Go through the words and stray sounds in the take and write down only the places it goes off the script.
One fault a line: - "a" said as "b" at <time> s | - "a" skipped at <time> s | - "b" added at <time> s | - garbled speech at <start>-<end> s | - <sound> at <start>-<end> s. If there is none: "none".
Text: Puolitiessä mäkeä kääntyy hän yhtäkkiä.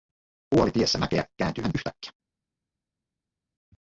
none